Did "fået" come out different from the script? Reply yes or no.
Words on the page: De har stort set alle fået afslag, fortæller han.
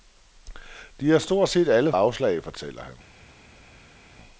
yes